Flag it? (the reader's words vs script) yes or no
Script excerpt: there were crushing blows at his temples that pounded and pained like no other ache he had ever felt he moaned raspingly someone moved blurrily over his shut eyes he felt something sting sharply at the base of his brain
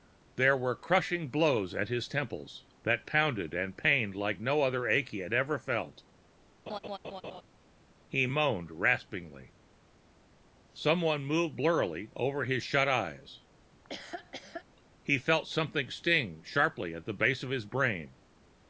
no